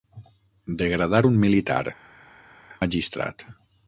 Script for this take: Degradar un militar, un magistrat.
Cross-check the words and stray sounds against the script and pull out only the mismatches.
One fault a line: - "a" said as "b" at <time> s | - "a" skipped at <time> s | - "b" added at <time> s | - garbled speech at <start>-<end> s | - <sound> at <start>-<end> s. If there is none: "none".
- "un" skipped at 1.8 s